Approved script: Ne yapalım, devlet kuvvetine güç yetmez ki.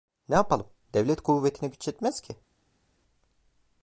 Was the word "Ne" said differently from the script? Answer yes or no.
no